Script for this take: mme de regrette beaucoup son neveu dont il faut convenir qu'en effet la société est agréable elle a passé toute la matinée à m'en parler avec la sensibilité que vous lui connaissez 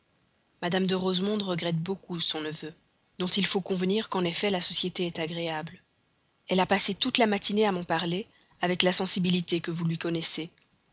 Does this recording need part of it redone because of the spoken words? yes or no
yes